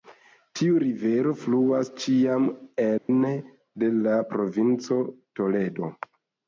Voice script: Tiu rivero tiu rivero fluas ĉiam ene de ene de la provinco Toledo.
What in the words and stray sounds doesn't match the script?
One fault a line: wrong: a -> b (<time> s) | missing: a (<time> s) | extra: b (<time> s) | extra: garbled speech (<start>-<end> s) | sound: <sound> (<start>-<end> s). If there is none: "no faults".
missing: tiu rivero (1.3 s)
sound: dropout (3.0-3.1 s)
missing: ene de (4.0 s)